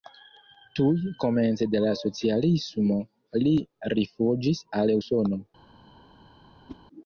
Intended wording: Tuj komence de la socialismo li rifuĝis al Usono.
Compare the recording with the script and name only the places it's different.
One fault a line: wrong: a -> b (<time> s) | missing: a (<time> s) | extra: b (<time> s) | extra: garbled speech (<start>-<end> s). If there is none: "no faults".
no faults